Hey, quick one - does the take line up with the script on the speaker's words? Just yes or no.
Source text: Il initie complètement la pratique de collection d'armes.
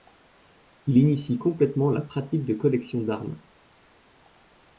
yes